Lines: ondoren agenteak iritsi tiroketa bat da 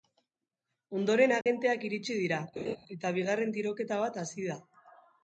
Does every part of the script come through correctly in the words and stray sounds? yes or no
no